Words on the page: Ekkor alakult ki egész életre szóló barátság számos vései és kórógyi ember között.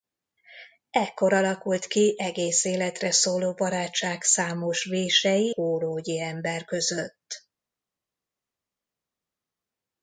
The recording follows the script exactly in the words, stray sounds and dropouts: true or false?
false